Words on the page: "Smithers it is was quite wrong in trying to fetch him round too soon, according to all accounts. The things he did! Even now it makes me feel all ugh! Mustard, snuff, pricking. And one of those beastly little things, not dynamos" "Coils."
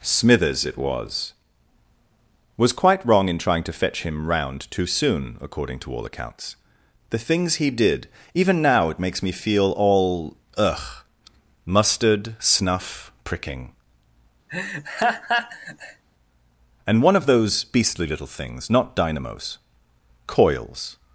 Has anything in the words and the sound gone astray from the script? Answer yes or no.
yes